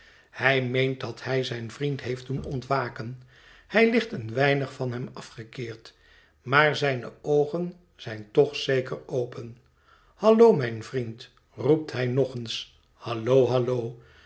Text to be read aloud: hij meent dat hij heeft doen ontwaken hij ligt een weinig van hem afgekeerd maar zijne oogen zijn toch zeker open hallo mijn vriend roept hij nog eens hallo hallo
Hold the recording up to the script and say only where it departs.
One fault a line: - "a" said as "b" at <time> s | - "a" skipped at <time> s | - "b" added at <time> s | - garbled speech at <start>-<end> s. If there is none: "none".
- "zijn vriend" added at 1.4 s